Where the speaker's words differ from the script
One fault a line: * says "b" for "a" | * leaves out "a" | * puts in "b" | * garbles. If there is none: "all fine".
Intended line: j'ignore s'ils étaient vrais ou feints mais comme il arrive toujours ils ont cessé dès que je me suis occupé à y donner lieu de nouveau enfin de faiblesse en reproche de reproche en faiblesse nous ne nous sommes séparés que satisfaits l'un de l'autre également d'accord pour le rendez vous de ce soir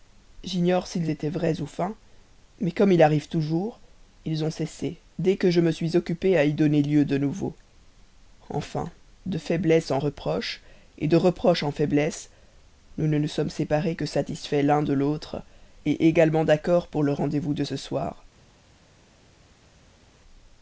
all fine